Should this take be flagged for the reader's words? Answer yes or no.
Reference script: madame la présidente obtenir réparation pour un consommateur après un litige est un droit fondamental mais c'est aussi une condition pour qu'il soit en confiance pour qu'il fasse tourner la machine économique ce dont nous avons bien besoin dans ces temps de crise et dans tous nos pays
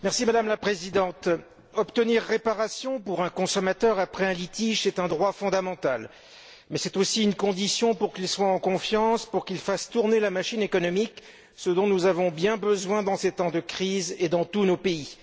no